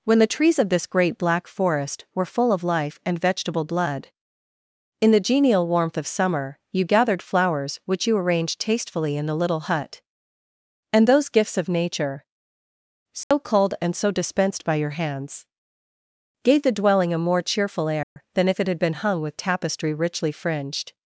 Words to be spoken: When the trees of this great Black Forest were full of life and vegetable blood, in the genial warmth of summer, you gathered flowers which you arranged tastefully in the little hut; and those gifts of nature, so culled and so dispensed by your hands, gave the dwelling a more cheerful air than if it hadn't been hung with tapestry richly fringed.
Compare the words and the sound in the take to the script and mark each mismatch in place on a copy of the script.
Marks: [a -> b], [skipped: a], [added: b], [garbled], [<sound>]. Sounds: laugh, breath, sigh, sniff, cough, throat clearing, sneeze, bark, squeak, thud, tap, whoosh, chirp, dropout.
When the trees of this great Black Forest were full of life and vegetable blood, in the genial warmth of summer, you gathered flowers which you arranged tastefully in the little hut; and those gifts of nature, so [dropout] culled and so dispensed by your hands, gave the dwelling a more cheerful air [dropout] than if it [hadn't -> had] been hung with tapestry richly fringed.